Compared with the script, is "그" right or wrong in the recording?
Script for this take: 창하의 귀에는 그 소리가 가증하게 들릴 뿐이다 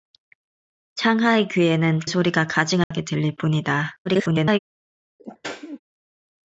wrong